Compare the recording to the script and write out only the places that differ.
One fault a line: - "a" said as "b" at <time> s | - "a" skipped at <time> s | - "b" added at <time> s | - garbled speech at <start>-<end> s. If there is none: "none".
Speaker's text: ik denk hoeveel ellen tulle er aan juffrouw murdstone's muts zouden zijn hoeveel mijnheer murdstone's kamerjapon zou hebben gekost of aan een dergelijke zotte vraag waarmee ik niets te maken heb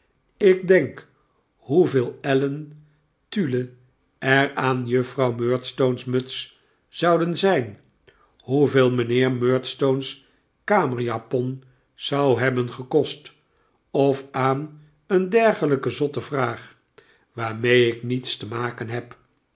none